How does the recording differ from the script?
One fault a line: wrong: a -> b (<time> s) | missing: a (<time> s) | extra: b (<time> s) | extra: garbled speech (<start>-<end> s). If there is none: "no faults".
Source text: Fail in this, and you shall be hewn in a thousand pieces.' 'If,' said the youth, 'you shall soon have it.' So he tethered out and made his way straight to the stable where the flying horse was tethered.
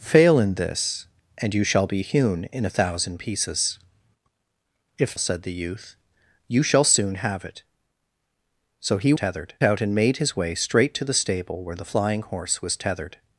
no faults